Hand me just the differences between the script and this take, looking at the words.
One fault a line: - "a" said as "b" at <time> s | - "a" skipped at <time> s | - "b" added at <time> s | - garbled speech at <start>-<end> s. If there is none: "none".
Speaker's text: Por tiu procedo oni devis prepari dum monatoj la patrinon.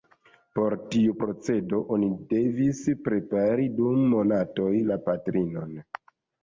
none